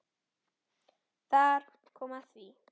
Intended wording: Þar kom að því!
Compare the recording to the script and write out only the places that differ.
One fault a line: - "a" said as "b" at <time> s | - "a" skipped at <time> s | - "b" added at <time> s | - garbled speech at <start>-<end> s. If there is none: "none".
none